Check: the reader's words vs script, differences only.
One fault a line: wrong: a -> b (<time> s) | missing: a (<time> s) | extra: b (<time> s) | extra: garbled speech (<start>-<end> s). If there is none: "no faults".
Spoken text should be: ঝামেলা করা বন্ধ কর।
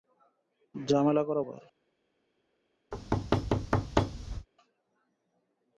missing: বন্ধ (1.4 s)